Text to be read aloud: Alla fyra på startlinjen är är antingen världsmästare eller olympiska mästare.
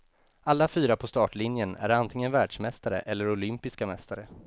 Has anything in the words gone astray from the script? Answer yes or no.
yes